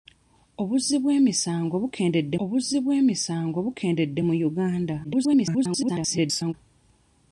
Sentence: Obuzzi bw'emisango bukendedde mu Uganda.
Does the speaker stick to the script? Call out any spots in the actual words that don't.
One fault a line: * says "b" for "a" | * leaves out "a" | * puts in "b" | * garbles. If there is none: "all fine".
* puts in "obuzzi bw'emisango bukendedde"
* garbles